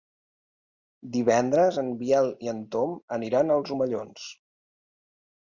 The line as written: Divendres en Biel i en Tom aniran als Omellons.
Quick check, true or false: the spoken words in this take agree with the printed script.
true